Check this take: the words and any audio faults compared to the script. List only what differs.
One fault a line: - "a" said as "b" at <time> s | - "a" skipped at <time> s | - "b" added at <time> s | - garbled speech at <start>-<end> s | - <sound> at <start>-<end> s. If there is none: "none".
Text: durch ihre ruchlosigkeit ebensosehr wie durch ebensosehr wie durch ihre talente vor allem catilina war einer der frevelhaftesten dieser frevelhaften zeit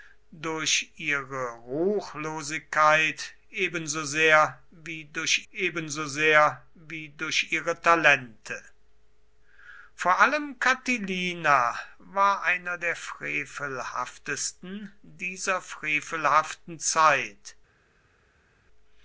none